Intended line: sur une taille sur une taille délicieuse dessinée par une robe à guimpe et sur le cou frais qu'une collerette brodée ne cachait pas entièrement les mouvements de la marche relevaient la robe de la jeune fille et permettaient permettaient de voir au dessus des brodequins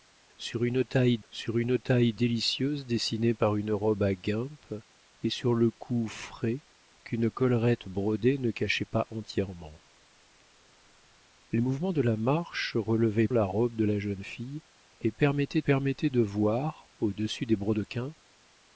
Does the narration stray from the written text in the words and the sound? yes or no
no